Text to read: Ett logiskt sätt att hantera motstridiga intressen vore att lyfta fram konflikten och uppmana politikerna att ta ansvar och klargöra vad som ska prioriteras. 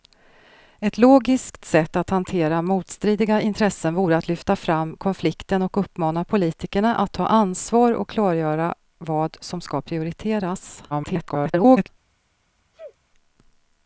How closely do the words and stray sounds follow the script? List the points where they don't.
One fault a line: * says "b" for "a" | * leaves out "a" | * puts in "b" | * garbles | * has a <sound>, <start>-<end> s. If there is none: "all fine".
* garbles
* has a sneeze, 12.7-13.0 s